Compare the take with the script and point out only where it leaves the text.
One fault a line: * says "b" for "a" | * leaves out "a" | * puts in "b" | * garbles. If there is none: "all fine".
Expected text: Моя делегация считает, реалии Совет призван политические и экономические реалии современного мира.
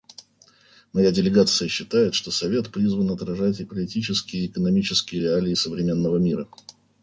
* says "что" for "реалии"
* puts in "отражать"